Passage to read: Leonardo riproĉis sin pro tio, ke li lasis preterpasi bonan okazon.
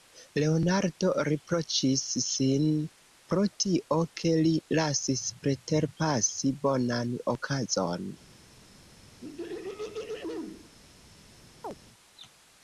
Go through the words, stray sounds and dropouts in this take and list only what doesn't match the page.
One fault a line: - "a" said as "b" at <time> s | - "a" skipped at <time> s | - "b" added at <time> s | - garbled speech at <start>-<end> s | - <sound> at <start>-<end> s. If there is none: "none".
- throat clearing at 9.2-10.7 s
- chirp at 11.6-11.8 s